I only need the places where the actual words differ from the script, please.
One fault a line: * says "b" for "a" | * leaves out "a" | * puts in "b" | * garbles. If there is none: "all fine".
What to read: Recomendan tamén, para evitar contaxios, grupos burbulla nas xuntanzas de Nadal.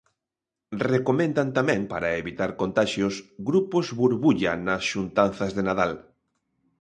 all fine